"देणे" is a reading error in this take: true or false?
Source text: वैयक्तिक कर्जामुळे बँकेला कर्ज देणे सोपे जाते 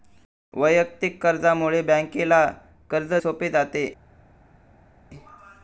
true